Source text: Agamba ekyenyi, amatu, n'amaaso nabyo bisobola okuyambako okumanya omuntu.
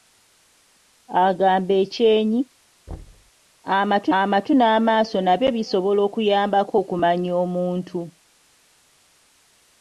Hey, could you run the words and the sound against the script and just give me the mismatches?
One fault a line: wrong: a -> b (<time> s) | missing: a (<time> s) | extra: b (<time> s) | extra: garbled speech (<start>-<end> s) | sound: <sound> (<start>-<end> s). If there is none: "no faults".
sound: thud (2.9-3.3 s)
extra: amatu (4.2 s)